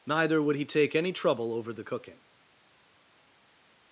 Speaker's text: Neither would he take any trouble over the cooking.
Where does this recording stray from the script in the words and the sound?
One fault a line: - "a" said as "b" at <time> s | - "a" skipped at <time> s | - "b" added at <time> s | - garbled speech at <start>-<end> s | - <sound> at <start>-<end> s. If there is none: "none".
none